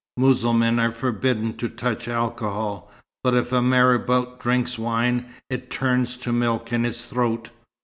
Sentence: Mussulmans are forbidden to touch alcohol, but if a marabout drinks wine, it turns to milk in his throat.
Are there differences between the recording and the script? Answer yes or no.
no